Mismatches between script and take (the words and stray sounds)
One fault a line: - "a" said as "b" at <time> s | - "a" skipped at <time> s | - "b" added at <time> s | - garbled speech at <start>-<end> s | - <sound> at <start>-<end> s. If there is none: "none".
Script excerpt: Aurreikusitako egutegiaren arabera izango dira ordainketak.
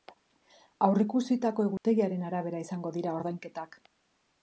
- dropout at 1.8-1.8 s